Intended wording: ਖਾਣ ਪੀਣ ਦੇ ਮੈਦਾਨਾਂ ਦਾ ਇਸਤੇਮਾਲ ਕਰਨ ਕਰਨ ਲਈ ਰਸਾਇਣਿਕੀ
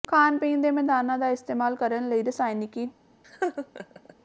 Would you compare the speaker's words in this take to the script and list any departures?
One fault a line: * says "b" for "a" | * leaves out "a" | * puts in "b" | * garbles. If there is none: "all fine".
* leaves out "ਕਰਨ"